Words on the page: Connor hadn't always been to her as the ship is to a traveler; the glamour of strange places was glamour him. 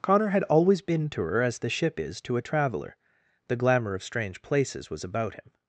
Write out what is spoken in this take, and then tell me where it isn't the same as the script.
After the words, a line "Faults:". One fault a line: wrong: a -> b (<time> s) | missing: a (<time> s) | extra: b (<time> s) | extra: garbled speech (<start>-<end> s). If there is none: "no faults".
Connor had always been to her as the ship is to a traveler; the glamour of strange places was about him.
Faults:
wrong: hadn't -> had (0.3 s)
wrong: glamour -> about (5.0 s)